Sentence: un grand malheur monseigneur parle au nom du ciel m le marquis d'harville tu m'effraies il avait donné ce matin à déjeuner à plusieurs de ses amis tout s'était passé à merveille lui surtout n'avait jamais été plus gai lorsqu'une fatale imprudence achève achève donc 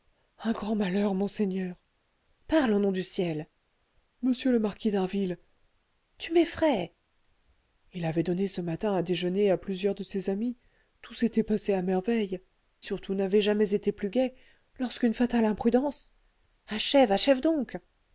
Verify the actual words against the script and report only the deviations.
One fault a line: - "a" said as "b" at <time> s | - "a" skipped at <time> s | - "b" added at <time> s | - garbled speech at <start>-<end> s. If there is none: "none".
- "lui" skipped at 12.4 s